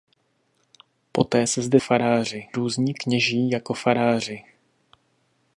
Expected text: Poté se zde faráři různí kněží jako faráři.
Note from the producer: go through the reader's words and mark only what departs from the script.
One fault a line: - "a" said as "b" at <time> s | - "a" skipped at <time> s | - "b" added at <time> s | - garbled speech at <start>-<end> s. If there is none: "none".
none